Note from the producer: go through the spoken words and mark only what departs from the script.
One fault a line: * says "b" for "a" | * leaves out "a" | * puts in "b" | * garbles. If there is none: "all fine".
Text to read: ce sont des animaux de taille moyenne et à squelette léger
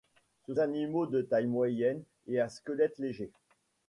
* leaves out "sont des"